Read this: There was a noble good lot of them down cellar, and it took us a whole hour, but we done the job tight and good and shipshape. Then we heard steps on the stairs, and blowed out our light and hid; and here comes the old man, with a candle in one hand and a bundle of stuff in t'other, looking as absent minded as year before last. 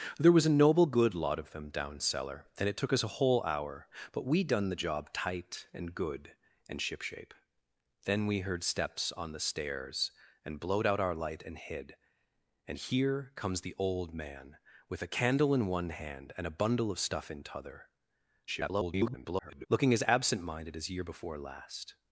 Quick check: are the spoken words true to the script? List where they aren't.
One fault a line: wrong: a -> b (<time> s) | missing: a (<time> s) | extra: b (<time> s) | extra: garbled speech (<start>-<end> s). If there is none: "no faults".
extra: garbled speech (18.5-19.7 s)